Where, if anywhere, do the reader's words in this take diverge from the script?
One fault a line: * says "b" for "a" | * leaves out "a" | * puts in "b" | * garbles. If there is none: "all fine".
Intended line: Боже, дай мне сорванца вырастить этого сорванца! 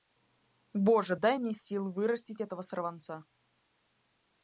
* says "сил" for "сорванца"